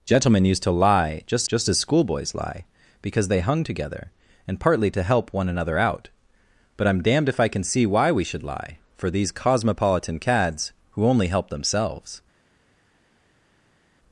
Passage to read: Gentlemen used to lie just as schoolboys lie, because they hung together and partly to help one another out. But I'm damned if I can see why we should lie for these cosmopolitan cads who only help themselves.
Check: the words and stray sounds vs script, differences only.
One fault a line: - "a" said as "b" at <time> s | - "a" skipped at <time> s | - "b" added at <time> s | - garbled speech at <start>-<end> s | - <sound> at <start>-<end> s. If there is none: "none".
- "just" added at 1.4 s